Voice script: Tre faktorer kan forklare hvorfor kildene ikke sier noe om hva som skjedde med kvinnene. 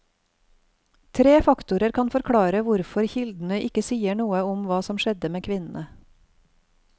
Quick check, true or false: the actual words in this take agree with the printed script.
true